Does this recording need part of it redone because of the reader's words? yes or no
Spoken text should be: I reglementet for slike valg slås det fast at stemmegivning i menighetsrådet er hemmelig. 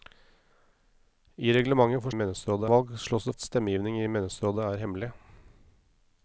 yes